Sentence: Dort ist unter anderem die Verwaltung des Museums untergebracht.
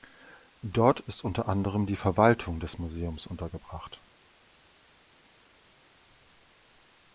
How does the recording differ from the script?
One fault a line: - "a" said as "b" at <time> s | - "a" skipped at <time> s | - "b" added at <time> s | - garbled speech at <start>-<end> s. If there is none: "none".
none